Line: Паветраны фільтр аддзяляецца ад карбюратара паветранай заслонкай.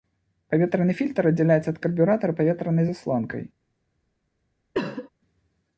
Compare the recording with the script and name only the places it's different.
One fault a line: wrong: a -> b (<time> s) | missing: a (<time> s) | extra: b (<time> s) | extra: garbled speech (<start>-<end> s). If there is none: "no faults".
no faults